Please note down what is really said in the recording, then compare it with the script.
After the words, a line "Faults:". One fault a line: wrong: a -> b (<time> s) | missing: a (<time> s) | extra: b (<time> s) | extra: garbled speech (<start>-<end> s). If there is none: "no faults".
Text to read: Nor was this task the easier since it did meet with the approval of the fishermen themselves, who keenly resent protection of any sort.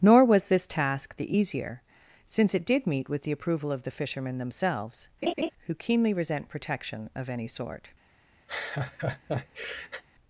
Nor was this task the easier since it did meet with the approval of the fishermen themselves, who keenly resent protection of any sort.
Faults:
no faults